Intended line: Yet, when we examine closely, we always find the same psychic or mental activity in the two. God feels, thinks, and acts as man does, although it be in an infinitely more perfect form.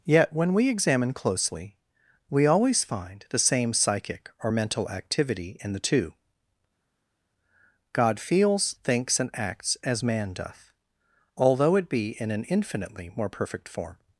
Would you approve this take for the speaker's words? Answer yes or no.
no